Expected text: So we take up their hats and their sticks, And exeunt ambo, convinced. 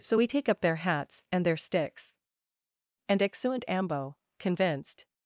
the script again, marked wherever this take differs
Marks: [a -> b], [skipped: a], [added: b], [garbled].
So we take up their hats and their sticks, And exeunt ambo, convinced.